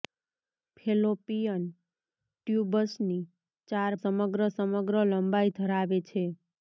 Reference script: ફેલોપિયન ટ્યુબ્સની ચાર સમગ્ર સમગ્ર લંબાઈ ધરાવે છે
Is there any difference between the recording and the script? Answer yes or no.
no